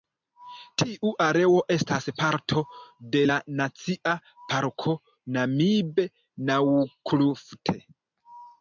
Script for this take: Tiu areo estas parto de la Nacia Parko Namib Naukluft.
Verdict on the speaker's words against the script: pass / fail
pass